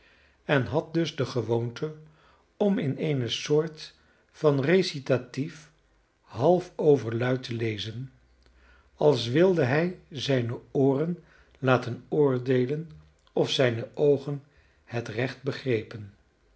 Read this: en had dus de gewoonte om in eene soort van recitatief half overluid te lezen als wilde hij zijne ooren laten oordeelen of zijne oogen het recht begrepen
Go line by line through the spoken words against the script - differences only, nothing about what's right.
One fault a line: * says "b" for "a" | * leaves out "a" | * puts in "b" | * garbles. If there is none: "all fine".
all fine